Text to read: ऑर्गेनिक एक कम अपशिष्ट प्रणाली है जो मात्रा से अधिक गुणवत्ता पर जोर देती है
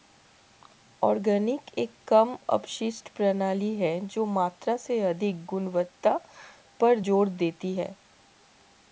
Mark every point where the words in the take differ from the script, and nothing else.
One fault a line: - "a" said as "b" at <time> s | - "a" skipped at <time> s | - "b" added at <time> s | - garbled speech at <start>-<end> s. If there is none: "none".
none